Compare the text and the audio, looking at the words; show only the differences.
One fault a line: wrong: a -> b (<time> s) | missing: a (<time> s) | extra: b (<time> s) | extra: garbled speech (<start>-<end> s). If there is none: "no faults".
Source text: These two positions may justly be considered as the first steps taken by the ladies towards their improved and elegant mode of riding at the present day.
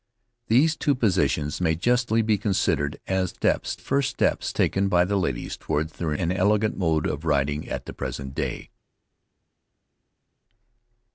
wrong: the -> steps (3.3 s)
missing: improved (6.1 s)